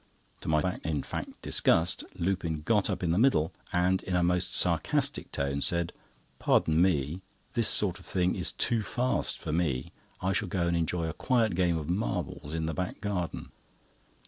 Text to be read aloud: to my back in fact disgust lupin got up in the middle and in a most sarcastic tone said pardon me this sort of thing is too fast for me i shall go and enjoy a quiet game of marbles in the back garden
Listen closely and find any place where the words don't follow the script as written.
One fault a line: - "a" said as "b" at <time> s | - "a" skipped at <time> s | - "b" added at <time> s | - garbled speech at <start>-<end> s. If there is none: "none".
none